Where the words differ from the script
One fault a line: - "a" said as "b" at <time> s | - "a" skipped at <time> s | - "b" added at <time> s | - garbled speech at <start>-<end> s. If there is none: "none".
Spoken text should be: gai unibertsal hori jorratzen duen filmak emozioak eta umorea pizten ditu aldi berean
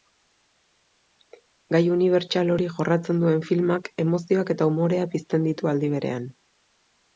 none